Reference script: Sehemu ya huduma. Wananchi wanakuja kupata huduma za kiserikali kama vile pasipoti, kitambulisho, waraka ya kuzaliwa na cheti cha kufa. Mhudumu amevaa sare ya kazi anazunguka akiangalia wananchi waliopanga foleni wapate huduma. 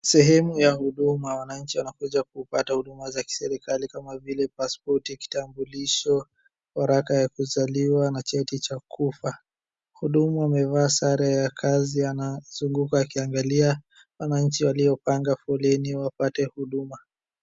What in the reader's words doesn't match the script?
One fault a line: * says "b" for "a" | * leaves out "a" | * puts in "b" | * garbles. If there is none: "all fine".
all fine